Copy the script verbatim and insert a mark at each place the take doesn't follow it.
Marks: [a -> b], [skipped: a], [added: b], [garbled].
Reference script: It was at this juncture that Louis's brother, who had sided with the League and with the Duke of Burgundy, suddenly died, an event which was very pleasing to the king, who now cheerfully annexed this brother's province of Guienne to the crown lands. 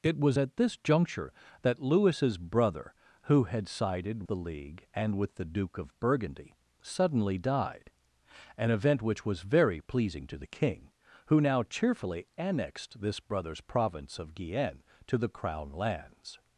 It was at this juncture that Louis's brother, who had sided [skipped: with] the League and with the Duke of Burgundy, suddenly died, an event which was very pleasing to the king, who now cheerfully annexed this brother's province of Guienne to the crown lands.